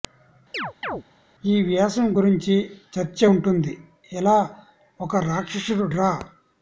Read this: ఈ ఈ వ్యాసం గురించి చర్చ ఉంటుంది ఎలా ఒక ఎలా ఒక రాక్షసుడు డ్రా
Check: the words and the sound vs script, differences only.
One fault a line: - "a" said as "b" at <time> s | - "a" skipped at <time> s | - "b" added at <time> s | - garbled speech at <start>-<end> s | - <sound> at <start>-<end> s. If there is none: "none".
- chirp at 0.5-1.0 s
- "ఈ" skipped at 1.6 s
- "ఎలా ఒక" skipped at 5.2 s